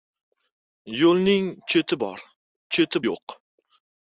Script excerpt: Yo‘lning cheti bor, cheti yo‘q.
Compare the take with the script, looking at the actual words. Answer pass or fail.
pass